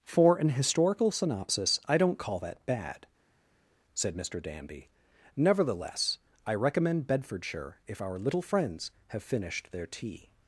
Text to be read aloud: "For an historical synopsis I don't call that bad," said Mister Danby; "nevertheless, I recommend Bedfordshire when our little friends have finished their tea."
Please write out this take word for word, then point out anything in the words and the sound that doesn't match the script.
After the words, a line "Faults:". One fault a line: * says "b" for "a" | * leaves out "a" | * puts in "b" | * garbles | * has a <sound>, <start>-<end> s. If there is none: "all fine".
"For an historical synopsis I don't call that bad," said Mister Danby; "nevertheless, I recommend Bedfordshire if our little friends have finished their tea."
Faults:
* says "if" for "when"